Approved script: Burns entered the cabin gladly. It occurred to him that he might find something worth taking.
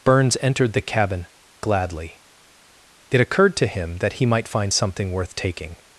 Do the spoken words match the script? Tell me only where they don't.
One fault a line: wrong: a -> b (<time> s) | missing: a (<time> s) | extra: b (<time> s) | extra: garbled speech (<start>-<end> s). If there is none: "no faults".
no faults